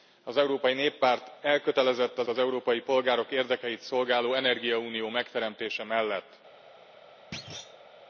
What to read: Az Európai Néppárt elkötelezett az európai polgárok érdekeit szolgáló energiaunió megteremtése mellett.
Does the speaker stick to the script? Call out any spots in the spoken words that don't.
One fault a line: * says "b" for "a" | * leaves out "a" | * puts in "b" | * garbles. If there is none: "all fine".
* puts in "az"